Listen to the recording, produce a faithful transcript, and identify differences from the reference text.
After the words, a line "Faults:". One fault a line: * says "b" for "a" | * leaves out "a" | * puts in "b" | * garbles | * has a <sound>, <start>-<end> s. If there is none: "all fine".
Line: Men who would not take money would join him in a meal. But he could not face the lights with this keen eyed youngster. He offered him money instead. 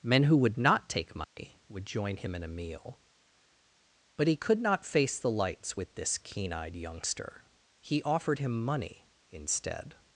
Men who would not take money would join him in a meal. But he could not face the lights with this keen eyed youngster. He offered him money instead.
Faults:
* has a dropout, 1.2-1.4 s